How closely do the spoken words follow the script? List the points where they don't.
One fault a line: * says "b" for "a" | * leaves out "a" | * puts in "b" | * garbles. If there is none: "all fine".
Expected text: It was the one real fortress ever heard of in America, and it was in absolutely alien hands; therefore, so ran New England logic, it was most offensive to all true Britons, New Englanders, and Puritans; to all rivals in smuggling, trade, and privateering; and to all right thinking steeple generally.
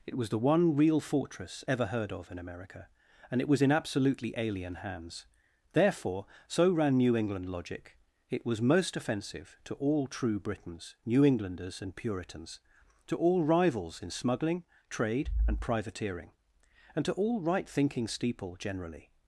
all fine